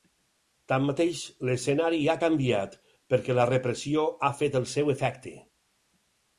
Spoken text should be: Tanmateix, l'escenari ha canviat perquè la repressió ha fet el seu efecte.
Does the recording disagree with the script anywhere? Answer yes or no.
no